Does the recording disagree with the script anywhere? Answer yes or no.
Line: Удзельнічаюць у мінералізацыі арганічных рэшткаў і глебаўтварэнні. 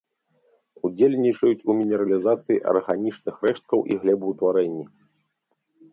no